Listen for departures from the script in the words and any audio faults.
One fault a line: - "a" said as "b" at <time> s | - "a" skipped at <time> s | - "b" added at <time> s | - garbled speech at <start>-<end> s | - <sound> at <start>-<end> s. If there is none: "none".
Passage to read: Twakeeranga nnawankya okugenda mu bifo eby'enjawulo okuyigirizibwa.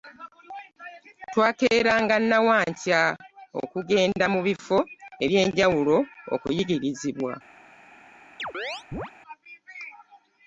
- chirp at 8.4-9.1 s